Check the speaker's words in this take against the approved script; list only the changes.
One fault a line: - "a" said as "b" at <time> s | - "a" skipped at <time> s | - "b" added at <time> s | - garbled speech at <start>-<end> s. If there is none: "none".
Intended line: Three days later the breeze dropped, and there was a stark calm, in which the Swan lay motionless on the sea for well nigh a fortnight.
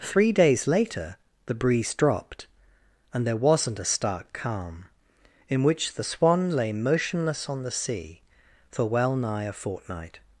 - "was" said as "wasn't" at 3.4 s